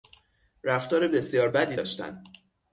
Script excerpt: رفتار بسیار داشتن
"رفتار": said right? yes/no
yes